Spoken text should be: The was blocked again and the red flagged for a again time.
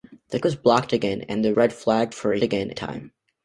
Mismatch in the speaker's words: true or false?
false